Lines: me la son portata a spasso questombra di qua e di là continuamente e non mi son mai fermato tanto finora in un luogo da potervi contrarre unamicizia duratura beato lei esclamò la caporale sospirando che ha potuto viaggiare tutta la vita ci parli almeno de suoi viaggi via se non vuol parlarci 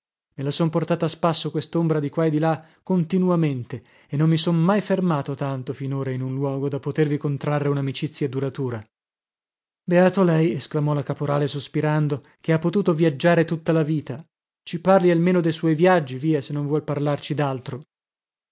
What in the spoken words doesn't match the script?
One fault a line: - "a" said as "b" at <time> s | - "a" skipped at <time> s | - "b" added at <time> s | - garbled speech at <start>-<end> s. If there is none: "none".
none